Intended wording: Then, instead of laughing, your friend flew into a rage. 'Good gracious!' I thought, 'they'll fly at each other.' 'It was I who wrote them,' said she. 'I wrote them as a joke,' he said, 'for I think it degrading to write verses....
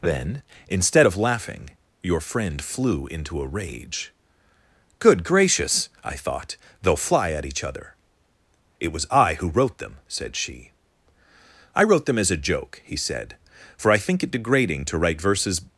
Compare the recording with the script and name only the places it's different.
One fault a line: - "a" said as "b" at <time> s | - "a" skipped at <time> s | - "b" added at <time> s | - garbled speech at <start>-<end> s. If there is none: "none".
none